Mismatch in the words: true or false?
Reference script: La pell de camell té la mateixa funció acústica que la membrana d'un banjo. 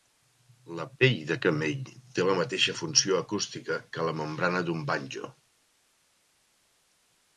false